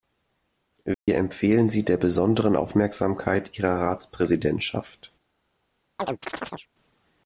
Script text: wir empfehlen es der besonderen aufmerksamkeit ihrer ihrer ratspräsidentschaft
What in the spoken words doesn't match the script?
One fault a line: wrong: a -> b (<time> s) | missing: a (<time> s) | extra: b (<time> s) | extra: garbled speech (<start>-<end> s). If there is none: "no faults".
wrong: es -> sie (1.7 s)
missing: ihrer (3.8 s)